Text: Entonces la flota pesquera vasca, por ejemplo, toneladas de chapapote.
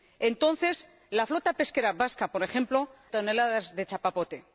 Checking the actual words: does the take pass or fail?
pass